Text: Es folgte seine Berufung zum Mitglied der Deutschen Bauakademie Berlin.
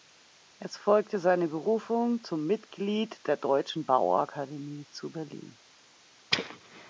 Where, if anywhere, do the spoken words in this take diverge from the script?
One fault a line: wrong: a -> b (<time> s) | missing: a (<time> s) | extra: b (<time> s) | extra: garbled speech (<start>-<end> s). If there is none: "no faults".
extra: zu (4.9 s)